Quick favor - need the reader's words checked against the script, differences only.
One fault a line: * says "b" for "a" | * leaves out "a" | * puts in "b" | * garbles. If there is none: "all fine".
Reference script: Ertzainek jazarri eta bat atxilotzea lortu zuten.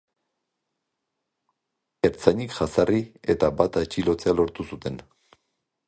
all fine